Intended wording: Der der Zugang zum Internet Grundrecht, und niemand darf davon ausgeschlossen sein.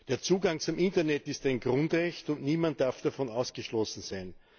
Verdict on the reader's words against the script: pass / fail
fail